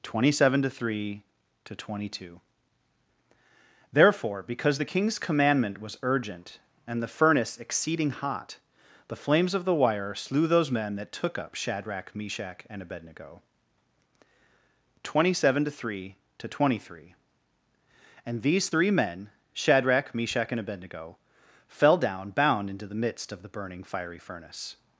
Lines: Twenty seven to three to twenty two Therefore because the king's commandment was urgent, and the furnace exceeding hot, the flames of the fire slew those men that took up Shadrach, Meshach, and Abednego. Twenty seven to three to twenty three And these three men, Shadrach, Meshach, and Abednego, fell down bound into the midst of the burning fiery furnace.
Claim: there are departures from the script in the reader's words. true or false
true